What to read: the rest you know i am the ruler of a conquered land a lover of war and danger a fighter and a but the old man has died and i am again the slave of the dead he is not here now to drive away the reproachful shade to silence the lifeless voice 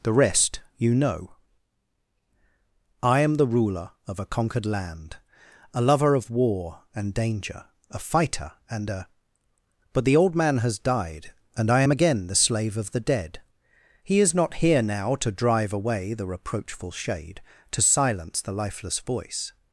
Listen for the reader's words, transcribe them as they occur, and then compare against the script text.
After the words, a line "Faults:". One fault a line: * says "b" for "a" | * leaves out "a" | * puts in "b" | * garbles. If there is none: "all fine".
the rest you know i am the ruler of a conquered land a lover of war and danger a fighter and a but the old man has died and i am again the slave of the dead he is not here now to drive away the reproachful shade to silence the lifeless voice
Faults:
all fine